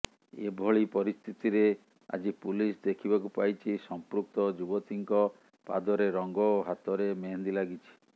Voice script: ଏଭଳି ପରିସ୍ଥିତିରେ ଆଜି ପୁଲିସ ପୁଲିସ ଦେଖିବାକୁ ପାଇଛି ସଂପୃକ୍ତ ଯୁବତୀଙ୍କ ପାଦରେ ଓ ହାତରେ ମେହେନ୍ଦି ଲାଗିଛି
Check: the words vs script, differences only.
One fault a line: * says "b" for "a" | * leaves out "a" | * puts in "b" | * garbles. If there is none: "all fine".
* leaves out "ପୁଲିସ"
* puts in "ରଙ୍ଗ"